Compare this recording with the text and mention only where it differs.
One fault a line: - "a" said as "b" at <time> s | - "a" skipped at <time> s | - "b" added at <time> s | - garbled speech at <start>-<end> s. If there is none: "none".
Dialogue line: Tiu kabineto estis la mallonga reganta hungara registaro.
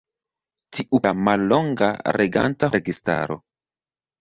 - "kabineto estis" skipped at 1.0 s
- "hungara" skipped at 2.7 s